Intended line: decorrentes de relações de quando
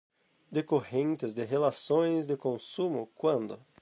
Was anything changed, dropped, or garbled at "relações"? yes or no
no